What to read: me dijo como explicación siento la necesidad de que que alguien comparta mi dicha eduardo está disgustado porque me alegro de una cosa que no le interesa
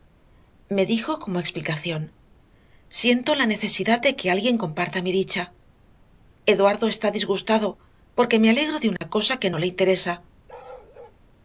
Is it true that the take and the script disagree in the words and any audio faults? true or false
true